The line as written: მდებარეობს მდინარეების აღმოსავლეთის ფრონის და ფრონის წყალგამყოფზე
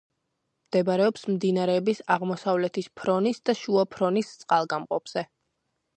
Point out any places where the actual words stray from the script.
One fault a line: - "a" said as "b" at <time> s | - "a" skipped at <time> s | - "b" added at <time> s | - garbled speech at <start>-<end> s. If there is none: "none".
- "შუა" added at 3.6 s